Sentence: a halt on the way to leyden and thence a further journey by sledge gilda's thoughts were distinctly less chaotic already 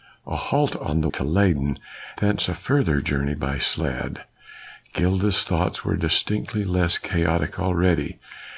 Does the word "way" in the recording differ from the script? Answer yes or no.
yes